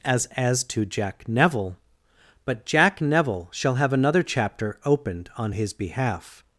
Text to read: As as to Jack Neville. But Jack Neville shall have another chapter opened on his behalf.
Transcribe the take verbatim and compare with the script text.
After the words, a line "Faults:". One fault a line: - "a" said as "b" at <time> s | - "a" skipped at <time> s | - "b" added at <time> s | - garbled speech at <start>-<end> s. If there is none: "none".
As as to Jack Neville. But Jack Neville shall have another chapter opened on his behalf.
Faults:
none